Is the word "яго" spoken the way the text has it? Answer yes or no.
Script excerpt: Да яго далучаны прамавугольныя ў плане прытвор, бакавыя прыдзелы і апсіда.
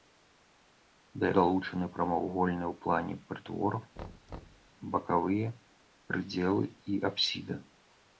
no